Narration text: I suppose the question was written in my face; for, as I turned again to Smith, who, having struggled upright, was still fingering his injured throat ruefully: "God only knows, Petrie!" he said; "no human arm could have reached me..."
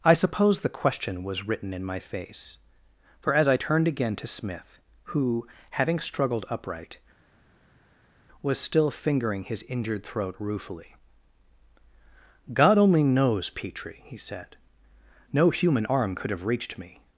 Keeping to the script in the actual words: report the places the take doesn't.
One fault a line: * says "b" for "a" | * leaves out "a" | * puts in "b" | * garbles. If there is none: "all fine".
all fine